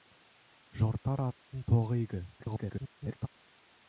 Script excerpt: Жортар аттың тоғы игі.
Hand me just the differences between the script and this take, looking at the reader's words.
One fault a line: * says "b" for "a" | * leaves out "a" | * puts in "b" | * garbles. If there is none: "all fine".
* garbles